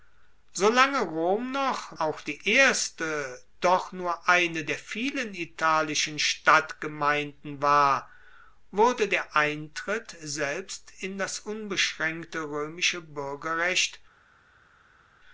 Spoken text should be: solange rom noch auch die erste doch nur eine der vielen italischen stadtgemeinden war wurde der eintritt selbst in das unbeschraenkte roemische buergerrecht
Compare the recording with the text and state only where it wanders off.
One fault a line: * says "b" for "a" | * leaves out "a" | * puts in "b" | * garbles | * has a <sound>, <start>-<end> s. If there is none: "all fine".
all fine